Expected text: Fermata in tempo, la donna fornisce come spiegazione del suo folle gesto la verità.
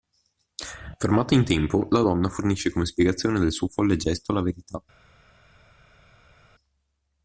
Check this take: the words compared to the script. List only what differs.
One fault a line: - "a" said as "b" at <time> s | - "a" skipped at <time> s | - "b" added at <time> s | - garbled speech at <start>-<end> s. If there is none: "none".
none